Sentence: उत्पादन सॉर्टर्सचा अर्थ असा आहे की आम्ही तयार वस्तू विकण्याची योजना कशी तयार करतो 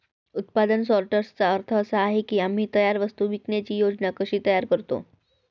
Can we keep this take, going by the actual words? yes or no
yes